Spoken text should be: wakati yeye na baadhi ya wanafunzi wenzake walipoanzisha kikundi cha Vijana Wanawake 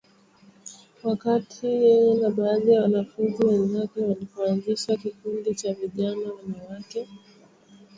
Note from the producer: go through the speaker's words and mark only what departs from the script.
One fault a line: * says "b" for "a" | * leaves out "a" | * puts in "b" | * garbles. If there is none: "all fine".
all fine